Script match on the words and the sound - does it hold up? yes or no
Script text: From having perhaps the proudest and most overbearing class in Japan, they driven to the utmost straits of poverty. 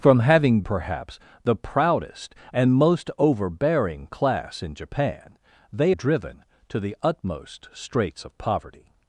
yes